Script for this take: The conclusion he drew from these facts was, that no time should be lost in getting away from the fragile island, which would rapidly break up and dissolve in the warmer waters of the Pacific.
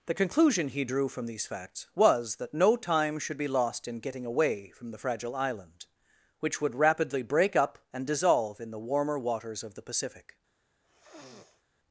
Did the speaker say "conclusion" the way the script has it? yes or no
yes